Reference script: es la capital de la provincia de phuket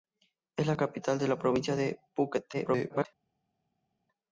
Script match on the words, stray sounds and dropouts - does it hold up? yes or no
no